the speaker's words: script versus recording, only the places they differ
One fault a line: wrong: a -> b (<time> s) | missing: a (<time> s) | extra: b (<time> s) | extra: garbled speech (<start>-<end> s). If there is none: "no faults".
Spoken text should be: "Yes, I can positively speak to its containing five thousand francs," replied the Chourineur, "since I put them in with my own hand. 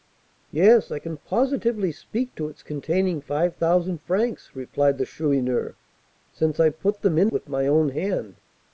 no faults